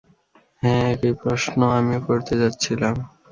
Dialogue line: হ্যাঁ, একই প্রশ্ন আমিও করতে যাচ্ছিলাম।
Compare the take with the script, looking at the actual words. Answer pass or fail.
pass